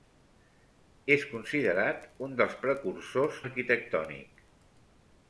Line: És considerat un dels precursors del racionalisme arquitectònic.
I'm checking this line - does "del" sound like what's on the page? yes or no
no